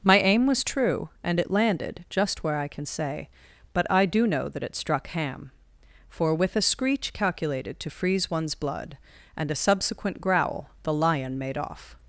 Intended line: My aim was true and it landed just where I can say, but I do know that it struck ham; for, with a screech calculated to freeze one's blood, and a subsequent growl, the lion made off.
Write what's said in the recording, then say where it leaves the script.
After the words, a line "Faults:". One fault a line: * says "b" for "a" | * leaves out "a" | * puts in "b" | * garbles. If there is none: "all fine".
My aim was true and it landed just where I can say, but I do know that it struck ham; for, with a screech calculated to freeze one's blood, and a subsequent growl, the lion made off.
Faults:
all fine